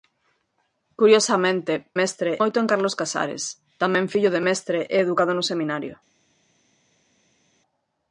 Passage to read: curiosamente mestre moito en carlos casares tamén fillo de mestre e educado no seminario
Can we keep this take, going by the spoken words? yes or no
yes